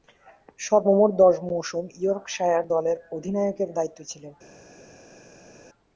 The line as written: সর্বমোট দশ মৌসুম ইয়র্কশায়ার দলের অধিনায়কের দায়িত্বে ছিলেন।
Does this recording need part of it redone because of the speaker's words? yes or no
no